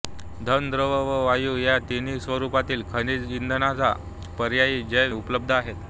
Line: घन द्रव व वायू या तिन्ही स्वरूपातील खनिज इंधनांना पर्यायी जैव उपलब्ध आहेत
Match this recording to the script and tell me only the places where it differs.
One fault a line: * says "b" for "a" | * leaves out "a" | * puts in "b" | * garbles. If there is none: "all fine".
all fine